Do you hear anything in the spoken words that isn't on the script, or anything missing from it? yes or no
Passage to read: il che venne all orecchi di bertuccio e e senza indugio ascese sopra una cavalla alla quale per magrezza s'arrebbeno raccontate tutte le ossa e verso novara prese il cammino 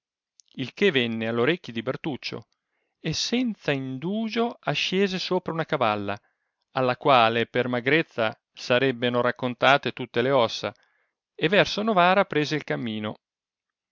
yes